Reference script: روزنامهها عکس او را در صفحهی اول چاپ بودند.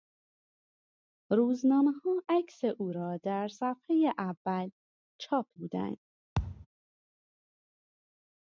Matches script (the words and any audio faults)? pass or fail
fail